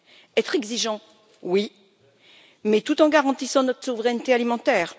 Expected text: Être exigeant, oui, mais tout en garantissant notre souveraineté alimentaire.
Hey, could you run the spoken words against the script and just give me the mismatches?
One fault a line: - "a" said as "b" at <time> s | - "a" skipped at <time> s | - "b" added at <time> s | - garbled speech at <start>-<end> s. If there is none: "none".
none